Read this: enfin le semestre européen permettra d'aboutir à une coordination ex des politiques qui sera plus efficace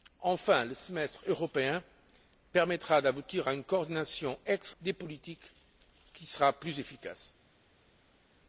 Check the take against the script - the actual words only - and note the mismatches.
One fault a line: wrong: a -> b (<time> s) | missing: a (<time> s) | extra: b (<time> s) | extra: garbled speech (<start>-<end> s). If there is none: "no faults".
no faults